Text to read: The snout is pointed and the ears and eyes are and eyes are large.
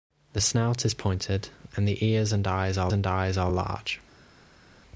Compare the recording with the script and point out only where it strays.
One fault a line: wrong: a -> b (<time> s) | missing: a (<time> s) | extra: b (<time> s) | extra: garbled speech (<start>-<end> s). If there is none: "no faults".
no faults